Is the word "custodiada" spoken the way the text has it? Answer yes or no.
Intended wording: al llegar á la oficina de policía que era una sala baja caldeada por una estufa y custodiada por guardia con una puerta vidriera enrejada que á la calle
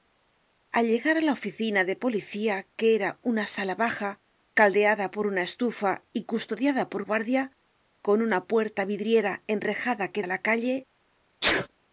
yes